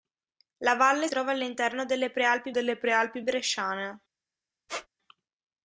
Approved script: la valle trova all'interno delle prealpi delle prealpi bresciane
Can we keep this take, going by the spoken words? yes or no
yes